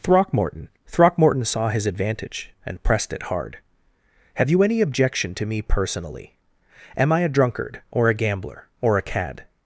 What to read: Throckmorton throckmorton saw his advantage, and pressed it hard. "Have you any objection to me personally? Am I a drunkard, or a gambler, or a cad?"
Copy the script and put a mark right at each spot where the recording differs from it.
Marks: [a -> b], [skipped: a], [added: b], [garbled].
Throckmorton throckmorton saw his advantage, and pressed it hard. "Have you any objection to me personally? Am I a drunkard, or a gambler, or a cad?"